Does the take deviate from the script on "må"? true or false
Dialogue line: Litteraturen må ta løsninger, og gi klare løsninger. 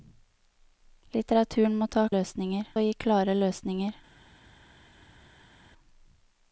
false